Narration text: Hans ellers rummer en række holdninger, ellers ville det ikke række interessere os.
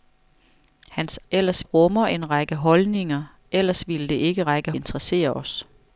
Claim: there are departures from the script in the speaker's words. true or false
false